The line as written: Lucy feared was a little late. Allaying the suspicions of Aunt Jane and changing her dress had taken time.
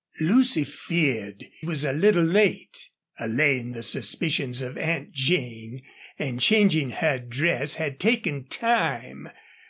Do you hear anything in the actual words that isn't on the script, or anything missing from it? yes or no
no